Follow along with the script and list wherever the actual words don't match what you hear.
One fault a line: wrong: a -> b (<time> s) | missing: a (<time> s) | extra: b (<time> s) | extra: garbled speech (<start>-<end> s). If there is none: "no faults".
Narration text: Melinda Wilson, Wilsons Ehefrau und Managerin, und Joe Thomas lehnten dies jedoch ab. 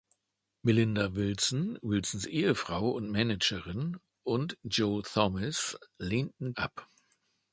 missing: dies jedoch (6.5 s)